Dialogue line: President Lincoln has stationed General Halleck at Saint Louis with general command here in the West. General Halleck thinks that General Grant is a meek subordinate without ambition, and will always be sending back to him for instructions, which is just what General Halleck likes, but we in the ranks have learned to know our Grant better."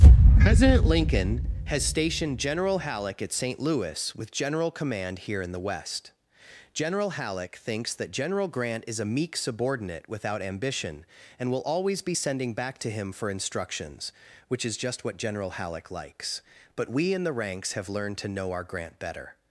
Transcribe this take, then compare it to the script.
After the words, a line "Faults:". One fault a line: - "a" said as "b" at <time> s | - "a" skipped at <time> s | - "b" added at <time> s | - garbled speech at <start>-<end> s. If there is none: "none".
President Lincoln has stationed General Halleck at Saint Louis with general command here in the West. General Halleck thinks that General Grant is a meek subordinate without ambition, and will always be sending back to him for instructions, which is just what General Halleck likes, but we in the ranks have learned to know our Grant better."
Faults:
none